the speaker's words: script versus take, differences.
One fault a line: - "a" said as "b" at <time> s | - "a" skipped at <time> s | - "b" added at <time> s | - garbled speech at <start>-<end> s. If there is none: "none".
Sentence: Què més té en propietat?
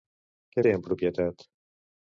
- "més" skipped at 0.6 s